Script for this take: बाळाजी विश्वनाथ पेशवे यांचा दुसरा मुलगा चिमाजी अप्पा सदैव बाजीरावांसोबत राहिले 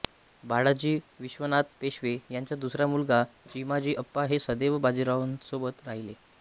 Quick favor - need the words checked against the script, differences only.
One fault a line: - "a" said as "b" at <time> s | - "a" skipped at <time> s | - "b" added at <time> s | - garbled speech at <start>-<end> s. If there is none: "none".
- "हे" added at 4.3 s